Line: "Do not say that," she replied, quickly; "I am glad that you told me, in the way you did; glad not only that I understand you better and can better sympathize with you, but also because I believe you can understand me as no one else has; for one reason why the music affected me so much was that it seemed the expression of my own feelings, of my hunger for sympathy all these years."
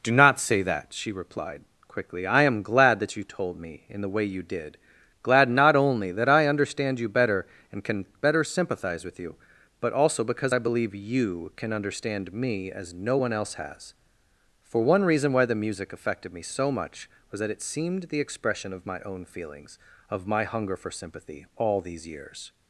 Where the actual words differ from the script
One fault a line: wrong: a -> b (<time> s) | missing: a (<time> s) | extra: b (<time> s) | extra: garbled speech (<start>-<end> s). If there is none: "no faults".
no faults